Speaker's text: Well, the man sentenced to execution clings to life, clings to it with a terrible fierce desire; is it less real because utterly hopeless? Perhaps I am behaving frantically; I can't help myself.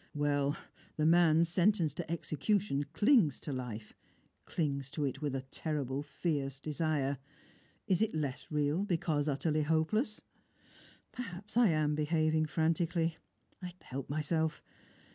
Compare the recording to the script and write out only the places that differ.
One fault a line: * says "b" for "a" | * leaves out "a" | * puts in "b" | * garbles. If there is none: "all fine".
* leaves out "can't"